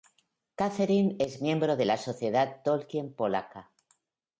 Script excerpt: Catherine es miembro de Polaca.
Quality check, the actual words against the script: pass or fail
fail